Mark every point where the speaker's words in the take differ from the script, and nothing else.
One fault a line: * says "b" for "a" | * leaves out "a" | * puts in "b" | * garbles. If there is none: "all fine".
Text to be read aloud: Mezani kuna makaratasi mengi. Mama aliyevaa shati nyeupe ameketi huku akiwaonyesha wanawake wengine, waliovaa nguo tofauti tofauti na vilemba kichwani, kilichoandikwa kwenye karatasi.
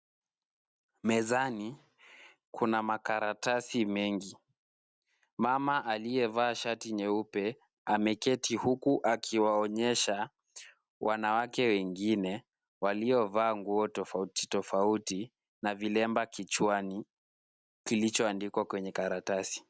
all fine